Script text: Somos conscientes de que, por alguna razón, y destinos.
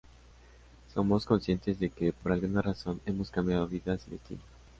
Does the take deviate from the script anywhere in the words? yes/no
yes